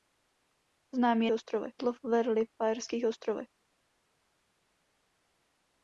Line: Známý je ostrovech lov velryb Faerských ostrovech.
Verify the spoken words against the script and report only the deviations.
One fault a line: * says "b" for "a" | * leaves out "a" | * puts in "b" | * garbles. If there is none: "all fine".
all fine